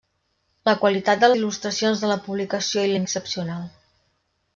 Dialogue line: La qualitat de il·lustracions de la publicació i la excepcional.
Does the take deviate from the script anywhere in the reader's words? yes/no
no